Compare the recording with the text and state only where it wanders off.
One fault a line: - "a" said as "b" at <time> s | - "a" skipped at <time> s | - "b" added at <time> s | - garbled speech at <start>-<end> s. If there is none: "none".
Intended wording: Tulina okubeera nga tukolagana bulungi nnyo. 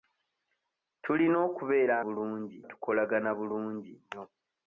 - "nga" said as "bulungi" at 2.0 s